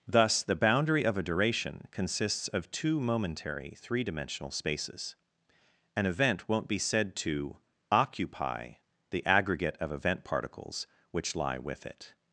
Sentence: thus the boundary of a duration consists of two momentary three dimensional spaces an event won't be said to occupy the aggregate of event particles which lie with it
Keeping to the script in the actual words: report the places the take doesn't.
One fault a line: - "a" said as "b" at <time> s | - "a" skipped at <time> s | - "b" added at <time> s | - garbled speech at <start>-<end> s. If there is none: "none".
none